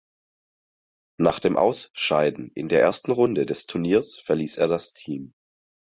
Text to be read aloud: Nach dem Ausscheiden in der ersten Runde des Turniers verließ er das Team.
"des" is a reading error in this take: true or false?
false